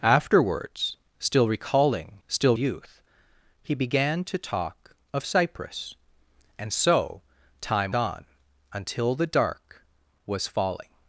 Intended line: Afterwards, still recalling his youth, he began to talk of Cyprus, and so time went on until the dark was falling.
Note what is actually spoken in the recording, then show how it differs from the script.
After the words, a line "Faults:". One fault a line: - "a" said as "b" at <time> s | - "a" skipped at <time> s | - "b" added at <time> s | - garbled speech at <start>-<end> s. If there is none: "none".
Afterwards, still recalling still youth, he began to talk of Cyprus, and so time on until the dark was falling.
Faults:
- "his" said as "still" at 2.3 s
- "went" skipped at 7.9 s